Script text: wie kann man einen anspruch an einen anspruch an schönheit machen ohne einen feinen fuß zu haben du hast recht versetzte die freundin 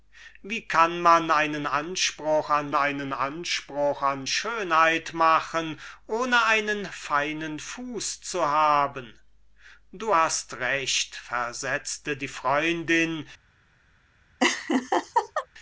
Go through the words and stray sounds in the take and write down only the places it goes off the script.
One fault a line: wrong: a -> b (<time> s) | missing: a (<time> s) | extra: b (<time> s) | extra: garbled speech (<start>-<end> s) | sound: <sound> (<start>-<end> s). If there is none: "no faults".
sound: laugh (14.4-15.5 s)